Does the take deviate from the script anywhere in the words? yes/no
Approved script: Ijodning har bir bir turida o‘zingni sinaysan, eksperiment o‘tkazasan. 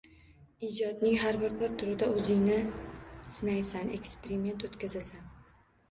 no